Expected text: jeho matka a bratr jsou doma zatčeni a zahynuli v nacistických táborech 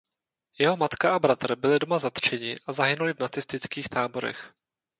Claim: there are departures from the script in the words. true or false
true